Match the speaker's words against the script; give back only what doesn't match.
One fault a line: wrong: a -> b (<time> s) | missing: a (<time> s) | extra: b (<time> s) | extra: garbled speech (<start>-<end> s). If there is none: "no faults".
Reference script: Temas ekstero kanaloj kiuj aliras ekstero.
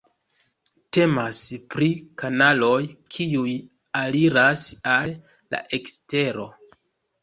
wrong: ekstero -> pri (1.8 s)
extra: al la (5.0 s)